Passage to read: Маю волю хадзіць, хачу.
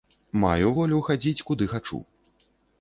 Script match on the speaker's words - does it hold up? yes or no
no